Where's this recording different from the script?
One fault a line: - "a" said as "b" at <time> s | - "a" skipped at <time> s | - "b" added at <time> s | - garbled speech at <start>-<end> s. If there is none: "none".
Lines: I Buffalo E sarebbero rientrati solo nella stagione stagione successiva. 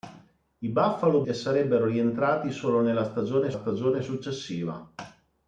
none